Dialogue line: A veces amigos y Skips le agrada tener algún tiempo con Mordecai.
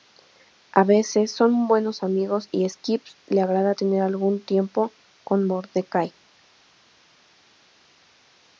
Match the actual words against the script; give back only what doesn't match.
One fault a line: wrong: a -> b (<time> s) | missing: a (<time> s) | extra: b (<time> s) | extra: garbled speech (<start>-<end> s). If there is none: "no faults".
extra: son buenos (1.3 s)